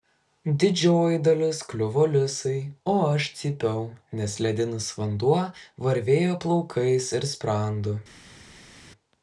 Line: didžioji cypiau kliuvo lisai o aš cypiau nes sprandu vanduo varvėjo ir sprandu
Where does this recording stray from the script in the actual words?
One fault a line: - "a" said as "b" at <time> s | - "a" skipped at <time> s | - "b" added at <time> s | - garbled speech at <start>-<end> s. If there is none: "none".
- "cypiau" said as "dalis" at 1.2 s
- "sprandu" said as "ledinis" at 4.5 s
- "plaukais" added at 6.5 s